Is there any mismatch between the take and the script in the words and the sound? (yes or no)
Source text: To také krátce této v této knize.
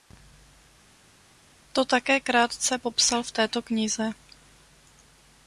yes